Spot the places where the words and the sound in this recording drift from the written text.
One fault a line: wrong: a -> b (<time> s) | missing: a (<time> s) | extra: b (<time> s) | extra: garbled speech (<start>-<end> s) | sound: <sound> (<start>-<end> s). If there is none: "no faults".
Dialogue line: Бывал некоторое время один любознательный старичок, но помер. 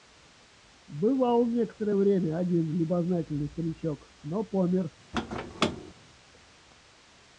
sound: squeak (5.1-5.9 s)